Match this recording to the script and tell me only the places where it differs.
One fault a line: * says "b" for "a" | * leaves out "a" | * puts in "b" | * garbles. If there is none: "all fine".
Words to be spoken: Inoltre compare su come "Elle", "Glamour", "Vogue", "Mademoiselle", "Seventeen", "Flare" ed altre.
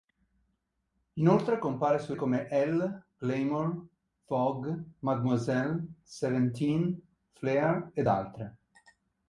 all fine